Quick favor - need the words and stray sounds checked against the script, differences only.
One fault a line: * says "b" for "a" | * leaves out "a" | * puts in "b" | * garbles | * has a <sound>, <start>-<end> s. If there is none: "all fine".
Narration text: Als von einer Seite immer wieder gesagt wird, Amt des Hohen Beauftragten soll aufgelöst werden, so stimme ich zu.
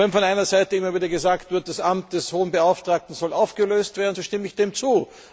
* says "Wenn" for "Als"
* puts in "das"
* puts in "dem"